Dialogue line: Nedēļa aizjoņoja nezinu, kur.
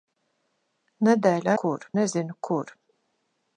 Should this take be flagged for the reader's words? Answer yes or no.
yes